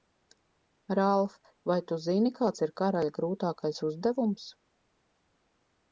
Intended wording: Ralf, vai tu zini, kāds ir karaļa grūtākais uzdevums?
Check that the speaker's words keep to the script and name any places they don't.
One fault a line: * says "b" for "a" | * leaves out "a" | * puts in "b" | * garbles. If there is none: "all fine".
all fine